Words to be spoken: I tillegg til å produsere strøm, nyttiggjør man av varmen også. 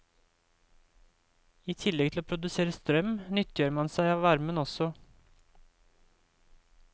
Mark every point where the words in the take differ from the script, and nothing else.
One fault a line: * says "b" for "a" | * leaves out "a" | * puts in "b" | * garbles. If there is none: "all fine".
* puts in "seg"